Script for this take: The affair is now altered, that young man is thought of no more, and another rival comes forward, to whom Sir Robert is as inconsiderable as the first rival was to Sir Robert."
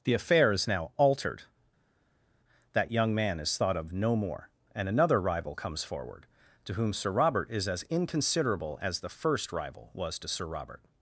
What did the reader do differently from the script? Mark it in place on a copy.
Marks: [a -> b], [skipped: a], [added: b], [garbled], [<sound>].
The affair is now altered, that young man is thought of no more, and another rival comes forward, to whom Sir Robert is as inconsiderable as the first rival was to Sir Robert."